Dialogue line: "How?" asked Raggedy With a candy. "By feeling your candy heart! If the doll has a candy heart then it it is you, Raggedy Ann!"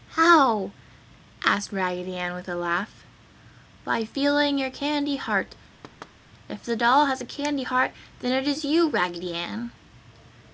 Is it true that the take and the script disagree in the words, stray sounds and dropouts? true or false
true